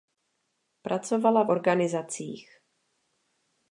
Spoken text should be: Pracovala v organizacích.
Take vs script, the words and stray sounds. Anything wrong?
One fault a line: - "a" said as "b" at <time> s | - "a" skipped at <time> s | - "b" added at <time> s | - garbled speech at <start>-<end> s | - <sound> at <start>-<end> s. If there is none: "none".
none